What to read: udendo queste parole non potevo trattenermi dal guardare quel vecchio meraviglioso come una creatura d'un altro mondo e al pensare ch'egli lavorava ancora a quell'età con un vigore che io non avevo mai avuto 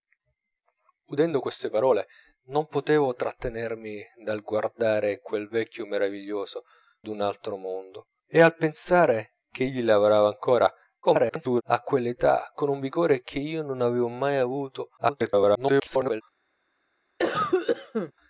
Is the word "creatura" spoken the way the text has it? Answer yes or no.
no